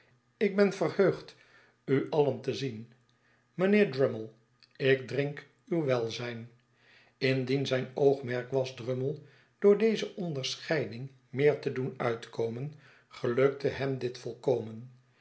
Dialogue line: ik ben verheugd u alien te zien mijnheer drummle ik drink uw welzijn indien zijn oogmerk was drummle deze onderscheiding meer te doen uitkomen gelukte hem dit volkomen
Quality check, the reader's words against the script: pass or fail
fail